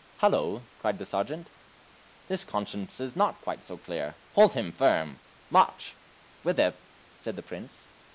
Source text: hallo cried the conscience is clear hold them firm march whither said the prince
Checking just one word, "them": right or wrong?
wrong